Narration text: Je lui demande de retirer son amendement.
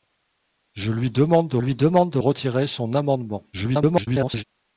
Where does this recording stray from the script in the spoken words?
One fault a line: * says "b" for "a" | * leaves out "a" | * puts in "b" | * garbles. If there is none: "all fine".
* puts in "lui demande de"
* garbles